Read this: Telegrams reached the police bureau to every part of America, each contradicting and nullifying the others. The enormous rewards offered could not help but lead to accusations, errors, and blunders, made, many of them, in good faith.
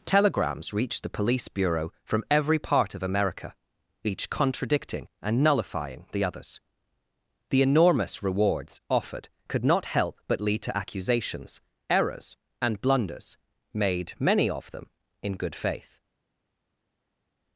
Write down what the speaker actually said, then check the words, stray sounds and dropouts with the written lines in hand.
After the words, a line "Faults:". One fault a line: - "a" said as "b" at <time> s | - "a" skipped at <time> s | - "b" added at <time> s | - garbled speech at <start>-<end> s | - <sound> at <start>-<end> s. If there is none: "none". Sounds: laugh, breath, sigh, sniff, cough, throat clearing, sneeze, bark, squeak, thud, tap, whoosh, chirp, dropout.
Telegrams reached the police bureau from every part of America, each contradicting and nullifying the others. The enormous rewards offered could not help but lead to accusations, errors, and blunders, made, many of them, in good faith.
Faults:
- "to" said as "from" at 2.0 s